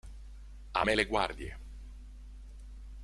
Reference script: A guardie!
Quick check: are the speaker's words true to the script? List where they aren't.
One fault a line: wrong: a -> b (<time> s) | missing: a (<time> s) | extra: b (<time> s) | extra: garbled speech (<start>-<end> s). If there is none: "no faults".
extra: me le (0.8 s)